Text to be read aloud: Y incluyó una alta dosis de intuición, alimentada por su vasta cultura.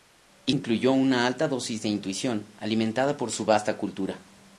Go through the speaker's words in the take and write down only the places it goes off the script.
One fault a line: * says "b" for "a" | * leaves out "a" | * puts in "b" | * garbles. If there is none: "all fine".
all fine